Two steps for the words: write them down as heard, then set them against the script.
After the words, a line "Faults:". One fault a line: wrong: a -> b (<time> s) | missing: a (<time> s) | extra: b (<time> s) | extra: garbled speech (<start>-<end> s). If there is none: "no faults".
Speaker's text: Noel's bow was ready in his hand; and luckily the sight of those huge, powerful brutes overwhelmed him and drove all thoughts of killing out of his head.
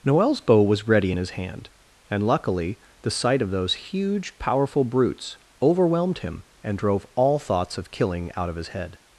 Noel's bow was ready in his hand; and luckily the sight of those huge, powerful brutes overwhelmed him and drove all thoughts of killing out of his head.
Faults:
no faults